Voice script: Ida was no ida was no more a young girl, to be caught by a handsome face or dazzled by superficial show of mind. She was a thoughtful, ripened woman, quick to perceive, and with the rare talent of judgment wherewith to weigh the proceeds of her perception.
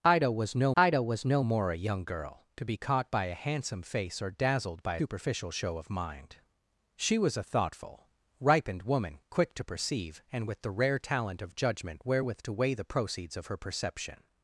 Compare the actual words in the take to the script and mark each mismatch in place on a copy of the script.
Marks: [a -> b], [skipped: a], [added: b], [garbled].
Ida was no ida was no more a young girl, to be caught by a handsome face or dazzled by superficial show of mind. She was a thoughtful, ripened woman, quick to perceive, and with the rare talent of judgment wherewith to weigh the proceeds of her perception.